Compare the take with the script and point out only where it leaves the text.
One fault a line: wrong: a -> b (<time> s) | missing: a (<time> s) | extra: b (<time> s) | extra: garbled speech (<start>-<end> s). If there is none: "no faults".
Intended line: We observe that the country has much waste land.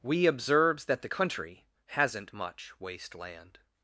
wrong: observe -> observes (0.2 s)
wrong: has -> hasn't (1.9 s)